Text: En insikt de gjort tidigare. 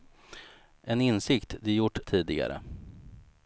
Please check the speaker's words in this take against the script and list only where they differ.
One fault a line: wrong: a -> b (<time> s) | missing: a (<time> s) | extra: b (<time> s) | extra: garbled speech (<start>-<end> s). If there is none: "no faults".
no faults